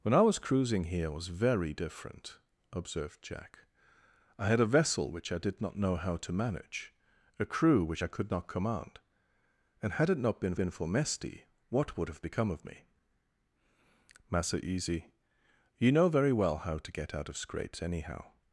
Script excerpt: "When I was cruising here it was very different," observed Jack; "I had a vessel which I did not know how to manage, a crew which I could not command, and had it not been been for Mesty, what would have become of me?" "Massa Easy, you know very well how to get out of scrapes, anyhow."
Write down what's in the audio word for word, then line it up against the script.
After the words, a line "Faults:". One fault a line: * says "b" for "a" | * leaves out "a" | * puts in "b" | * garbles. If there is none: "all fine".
"When I was cruising here it was very different," observed Jack; "I had a vessel which I did not know how to manage, a crew which I could not command, and had it not been been for Mesty, what would have become of me?" "Massa Easy, you know very well how to get out of scrapes, anyhow."
Faults:
all fine